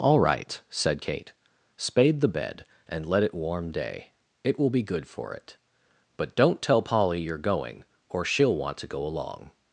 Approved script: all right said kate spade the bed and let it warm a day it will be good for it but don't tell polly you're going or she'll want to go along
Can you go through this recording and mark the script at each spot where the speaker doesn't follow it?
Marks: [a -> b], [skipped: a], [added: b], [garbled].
all right said kate spade the bed and let it warm [skipped: a] day it will be good for it but don't tell polly you're going or she'll want to go along